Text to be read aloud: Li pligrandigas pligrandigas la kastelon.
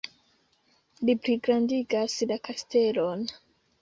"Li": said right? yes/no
yes